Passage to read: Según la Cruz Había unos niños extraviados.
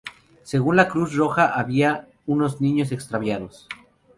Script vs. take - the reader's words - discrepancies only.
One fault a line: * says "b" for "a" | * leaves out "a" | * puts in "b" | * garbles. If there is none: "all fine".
* puts in "Roja"